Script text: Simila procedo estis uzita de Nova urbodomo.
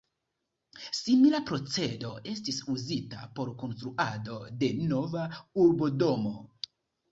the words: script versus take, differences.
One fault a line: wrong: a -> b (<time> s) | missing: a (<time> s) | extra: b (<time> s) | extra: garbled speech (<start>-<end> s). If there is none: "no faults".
extra: por konstruado (3.4 s)